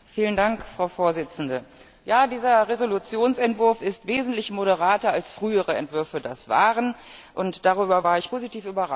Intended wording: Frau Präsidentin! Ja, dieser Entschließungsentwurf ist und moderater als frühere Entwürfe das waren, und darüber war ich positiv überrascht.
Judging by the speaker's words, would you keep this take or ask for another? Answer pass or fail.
fail